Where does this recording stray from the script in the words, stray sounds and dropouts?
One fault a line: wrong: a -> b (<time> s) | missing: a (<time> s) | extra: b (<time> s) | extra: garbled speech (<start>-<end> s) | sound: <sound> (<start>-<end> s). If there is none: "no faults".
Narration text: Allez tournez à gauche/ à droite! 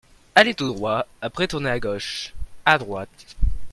extra: tout droit Après (0.6 s)